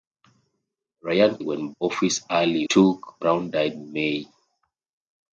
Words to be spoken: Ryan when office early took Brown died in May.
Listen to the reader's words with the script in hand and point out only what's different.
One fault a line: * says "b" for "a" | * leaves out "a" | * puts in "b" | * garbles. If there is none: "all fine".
all fine